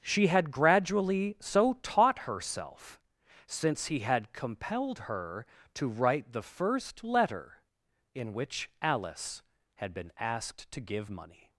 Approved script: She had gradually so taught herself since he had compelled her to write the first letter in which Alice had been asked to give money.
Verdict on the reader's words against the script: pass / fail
pass